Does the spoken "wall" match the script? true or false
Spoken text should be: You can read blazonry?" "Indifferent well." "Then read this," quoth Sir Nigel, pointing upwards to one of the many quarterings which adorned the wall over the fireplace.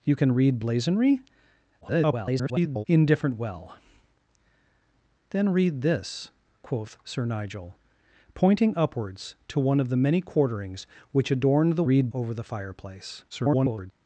false